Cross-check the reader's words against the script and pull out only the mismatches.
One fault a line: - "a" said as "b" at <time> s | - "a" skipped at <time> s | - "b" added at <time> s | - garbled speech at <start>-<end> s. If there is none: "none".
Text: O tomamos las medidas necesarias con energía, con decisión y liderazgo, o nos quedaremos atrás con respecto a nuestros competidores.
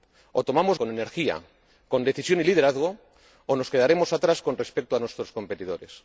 - "las medidas necesarias" skipped at 0.8 s